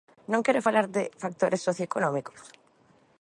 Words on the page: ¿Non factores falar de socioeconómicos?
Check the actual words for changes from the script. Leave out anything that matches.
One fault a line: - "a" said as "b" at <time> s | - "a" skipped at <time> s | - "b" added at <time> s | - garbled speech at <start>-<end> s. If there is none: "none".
- "factores" said as "quere" at 0.5 s
- "factores" added at 1.2 s